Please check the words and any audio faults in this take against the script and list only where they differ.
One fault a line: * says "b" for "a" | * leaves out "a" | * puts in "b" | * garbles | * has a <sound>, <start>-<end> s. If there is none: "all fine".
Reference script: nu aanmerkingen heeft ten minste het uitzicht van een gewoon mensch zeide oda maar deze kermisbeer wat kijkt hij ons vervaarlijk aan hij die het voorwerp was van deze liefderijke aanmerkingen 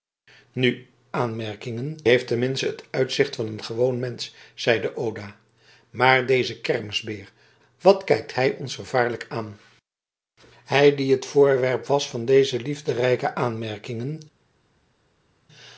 all fine